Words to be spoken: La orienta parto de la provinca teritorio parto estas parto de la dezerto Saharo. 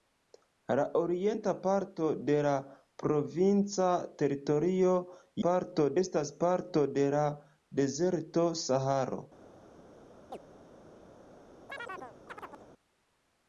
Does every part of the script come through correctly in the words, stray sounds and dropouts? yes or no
no